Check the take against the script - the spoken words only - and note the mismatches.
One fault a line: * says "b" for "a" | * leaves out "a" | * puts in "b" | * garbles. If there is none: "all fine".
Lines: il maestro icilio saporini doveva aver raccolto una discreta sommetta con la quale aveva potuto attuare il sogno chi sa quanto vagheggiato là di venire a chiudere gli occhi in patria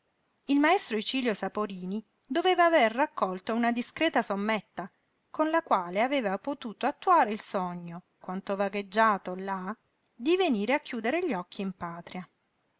* leaves out "chi sa"